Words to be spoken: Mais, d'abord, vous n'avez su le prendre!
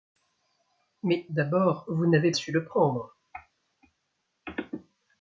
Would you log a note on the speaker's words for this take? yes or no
no